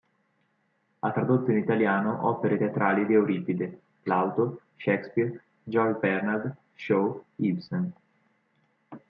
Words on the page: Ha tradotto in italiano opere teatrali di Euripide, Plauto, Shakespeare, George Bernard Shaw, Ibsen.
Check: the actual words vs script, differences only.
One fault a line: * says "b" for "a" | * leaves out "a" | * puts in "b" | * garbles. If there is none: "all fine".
all fine